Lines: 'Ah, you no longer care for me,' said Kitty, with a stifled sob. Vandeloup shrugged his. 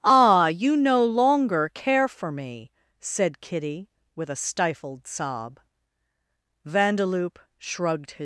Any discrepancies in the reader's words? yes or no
no